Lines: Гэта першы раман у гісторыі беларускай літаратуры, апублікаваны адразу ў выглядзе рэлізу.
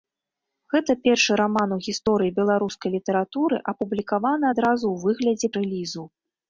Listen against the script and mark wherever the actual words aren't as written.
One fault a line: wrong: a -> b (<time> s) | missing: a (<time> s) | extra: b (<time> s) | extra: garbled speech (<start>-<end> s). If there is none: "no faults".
no faults